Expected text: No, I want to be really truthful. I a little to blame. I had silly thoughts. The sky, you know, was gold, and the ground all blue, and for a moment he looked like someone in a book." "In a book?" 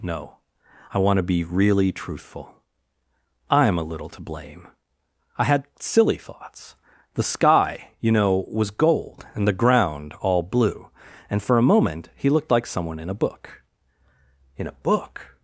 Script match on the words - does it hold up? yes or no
no